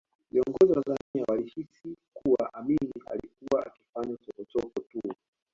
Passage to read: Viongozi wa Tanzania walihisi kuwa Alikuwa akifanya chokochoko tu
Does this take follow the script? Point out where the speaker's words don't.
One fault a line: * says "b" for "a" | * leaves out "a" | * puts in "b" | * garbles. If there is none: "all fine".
* puts in "Amin"